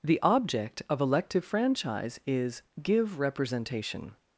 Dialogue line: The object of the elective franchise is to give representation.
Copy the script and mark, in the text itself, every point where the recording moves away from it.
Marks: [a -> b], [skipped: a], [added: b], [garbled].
The object of [skipped: the] elective franchise is [skipped: to] give representation.